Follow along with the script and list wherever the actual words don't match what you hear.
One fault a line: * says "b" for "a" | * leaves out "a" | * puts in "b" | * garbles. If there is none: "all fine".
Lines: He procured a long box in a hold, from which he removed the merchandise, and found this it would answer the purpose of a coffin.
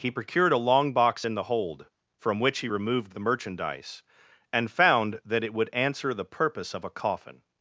* says "the" for "a"
* says "that" for "this"